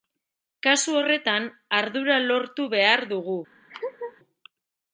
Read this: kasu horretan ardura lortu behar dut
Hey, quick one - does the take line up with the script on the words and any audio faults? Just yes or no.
no